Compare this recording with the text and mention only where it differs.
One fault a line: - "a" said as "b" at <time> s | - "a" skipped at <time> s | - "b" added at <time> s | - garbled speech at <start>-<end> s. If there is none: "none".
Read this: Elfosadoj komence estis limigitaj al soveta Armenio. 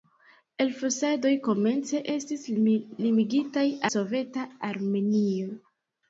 - "al" skipped at 3.7 s